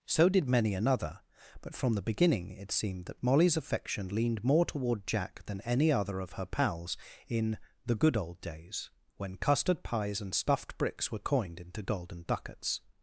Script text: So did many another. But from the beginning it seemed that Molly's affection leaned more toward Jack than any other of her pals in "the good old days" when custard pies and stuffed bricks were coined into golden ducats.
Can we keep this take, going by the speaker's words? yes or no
yes